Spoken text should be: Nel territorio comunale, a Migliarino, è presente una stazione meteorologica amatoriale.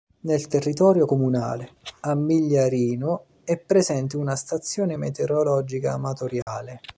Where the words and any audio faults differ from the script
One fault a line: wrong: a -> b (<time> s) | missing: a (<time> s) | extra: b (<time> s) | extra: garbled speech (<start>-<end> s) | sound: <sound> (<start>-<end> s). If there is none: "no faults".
sound: dropout (6.4-6.5 s)